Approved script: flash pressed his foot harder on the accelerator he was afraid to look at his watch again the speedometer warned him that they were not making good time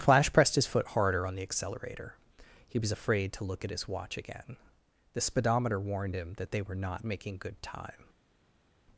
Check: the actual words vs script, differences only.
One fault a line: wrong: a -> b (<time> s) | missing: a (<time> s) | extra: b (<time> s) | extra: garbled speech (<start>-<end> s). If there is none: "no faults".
no faults